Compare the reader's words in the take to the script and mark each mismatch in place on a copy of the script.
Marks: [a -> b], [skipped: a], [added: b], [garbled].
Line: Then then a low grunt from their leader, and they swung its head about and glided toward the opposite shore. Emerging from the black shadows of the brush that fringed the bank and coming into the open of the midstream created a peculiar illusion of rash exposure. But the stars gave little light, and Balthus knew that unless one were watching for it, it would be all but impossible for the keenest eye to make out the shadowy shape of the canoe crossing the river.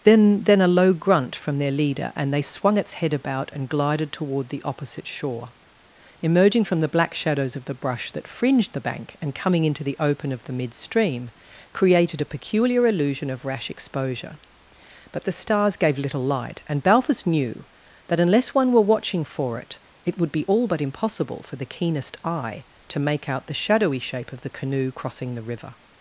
Then then a low grunt from their leader, and they swung its head about and glided toward the opposite shore. Emerging from the black shadows of the brush that fringed the bank and coming into the open of the midstream created a peculiar illusion of rash exposure. But the stars gave little light, and Balthus knew that unless one were watching for it, it would be all but impossible for the keenest eye to make out the shadowy shape of the canoe crossing the river.